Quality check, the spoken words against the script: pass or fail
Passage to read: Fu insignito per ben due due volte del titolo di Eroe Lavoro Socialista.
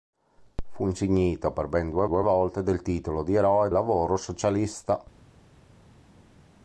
pass